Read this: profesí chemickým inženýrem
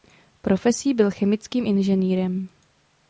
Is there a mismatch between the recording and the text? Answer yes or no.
yes